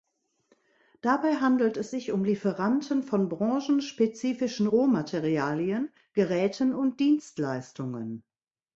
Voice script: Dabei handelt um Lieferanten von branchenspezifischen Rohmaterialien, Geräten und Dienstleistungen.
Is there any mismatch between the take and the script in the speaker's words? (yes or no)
yes